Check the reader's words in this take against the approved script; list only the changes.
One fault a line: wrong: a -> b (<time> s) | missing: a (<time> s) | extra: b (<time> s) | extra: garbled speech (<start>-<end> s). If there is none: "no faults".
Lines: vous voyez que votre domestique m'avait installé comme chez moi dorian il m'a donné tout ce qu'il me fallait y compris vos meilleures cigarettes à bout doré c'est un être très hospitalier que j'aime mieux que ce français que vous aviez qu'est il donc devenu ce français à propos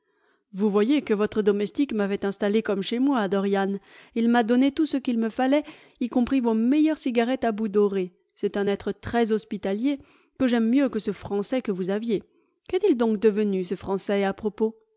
no faults